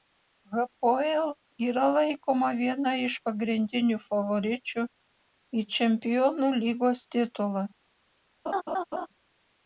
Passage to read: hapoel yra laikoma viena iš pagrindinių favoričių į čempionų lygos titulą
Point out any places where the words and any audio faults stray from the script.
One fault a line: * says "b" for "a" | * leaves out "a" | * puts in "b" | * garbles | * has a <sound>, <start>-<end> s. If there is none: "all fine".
* has a laugh, 8.5-9.1 s